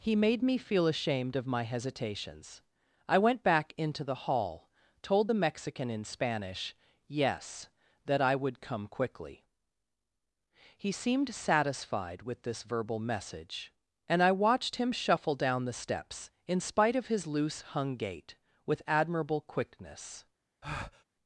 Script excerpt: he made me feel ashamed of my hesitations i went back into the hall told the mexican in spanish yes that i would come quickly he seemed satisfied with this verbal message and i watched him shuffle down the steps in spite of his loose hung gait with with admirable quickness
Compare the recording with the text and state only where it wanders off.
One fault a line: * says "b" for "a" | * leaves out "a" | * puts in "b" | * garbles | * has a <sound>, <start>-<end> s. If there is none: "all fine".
* leaves out "with"
* has a breath, 20.6-21.0 s